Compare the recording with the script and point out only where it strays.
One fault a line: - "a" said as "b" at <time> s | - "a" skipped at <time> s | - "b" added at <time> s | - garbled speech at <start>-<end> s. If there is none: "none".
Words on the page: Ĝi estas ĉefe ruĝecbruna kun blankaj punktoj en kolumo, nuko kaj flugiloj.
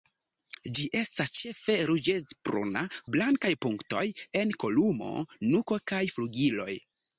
- "kun" skipped at 2.8 s